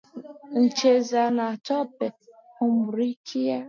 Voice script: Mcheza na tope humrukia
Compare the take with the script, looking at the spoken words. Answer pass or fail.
pass